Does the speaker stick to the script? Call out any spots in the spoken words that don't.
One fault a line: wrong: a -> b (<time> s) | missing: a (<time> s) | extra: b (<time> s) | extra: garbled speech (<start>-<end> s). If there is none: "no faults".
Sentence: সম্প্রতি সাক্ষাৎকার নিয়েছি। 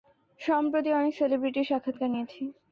extra: অনেক সেলিব্রিটির (1.0 s)